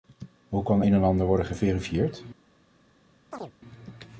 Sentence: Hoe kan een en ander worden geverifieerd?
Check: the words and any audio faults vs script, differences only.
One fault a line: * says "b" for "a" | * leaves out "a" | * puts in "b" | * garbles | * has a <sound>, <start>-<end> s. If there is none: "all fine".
* has a chirp, 3.3-3.5 s